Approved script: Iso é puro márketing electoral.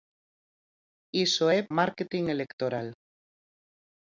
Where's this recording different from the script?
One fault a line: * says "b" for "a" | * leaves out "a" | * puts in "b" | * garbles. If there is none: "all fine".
* leaves out "puro"